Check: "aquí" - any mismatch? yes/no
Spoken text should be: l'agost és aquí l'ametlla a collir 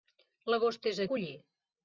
yes